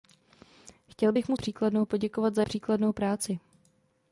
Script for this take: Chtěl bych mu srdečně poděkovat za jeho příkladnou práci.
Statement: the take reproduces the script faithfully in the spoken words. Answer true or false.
false